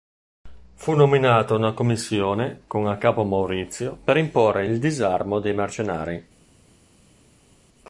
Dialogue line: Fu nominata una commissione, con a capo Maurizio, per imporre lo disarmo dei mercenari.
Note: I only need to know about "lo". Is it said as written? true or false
false